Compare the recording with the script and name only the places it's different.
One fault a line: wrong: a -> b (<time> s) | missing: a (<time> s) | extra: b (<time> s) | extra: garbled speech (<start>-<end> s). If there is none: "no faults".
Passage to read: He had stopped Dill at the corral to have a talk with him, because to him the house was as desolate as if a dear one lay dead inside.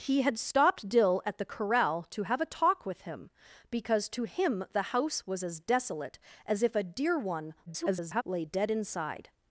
extra: garbled speech (7.7-8.2 s)